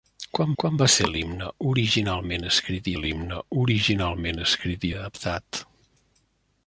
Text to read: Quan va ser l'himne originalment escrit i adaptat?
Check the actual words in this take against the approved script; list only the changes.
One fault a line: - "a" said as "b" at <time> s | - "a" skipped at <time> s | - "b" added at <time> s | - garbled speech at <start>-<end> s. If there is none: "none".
- "quan" added at 0.6 s
- "l'himne originalment escrit" added at 3.0 s